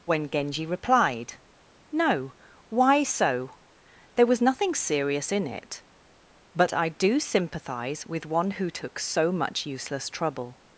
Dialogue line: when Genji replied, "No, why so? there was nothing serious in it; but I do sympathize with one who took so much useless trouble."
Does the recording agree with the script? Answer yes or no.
yes